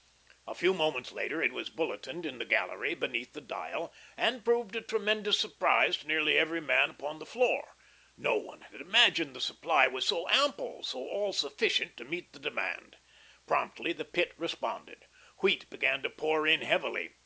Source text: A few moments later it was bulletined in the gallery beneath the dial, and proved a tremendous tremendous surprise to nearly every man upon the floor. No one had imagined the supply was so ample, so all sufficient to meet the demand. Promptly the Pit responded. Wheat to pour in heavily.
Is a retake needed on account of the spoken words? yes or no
yes